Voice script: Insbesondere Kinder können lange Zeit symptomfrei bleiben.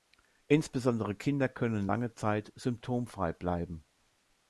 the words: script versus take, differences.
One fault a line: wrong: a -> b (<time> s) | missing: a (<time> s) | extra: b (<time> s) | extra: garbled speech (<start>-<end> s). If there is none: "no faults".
no faults